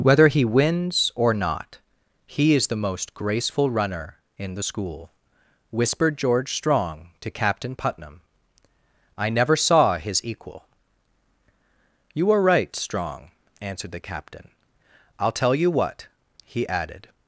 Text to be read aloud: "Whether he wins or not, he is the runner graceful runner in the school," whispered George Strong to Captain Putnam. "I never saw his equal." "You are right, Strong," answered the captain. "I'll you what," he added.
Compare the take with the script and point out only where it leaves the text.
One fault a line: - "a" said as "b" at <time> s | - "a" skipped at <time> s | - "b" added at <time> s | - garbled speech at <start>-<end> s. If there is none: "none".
- "runner" said as "most" at 2.8 s
- "tell" added at 15.3 s